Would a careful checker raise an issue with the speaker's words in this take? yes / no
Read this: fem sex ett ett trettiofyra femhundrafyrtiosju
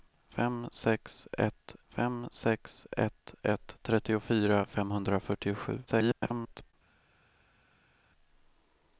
yes